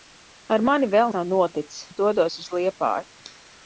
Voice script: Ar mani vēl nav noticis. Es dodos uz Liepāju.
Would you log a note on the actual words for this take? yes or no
no